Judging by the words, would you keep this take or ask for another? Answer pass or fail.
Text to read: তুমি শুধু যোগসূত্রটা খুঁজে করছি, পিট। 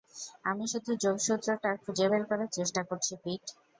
fail